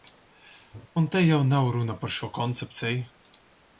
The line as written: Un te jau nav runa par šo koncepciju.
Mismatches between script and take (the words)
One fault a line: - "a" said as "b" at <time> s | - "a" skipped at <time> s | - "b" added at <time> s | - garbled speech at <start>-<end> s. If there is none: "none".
none